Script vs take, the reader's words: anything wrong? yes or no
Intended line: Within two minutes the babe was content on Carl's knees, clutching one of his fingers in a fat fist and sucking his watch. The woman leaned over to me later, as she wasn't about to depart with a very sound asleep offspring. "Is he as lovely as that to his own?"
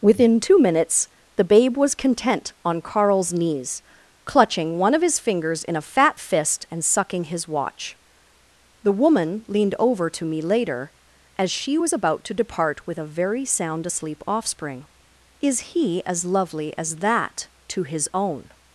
yes